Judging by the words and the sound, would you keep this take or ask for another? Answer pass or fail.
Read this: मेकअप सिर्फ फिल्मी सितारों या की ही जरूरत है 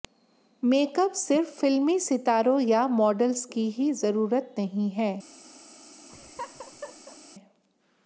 fail